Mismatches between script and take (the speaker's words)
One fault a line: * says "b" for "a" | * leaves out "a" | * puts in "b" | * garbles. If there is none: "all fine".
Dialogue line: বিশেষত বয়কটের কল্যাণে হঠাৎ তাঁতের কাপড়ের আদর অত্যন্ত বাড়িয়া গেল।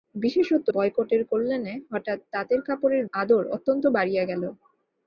all fine